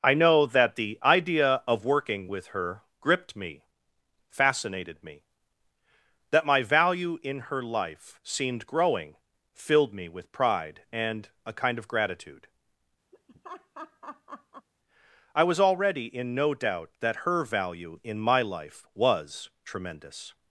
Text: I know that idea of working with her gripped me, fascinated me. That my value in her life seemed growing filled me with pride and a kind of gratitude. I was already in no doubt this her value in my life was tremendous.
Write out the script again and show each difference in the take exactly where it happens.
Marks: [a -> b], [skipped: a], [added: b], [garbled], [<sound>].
I know that [added: the] idea of working with her gripped me, fascinated me. That my value in her life seemed growing filled me with pride and a kind of gratitude. [laugh] I was already in no doubt [this -> that] her value in my life was tremendous.